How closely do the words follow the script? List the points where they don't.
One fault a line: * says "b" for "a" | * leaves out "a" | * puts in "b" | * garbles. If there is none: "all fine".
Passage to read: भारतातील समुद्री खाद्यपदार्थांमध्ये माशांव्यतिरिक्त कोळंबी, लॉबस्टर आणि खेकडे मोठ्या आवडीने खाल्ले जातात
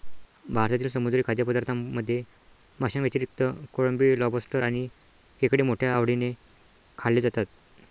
all fine